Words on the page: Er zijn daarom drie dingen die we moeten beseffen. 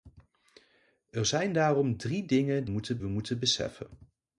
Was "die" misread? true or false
true